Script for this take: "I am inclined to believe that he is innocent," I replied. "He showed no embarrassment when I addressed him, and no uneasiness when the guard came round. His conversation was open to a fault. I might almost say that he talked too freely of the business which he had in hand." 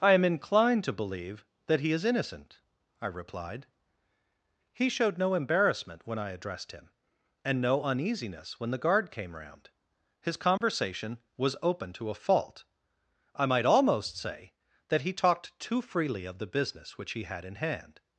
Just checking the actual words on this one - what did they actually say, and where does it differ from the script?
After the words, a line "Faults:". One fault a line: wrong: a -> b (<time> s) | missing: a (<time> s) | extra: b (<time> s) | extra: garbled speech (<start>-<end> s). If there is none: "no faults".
"I am inclined to believe that he is innocent," I replied. "He showed no embarrassment when I addressed him, and no uneasiness when the guard came round. His conversation was open to a fault. I might almost say that he talked too freely of the business which he had in hand."
Faults:
no faults